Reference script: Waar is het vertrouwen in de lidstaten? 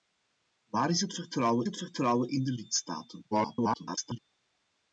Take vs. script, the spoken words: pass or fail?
fail